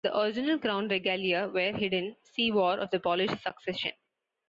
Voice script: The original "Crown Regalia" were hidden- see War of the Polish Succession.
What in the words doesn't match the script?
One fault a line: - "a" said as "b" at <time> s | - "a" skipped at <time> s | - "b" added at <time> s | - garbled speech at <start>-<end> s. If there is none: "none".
none